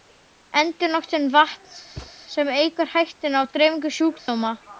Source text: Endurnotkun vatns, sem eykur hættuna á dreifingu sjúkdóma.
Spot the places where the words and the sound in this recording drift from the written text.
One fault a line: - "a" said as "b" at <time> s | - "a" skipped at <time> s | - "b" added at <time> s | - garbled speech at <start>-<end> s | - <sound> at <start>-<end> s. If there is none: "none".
- thud at 2.0-2.1 s
- dropout at 4.2-4.3 s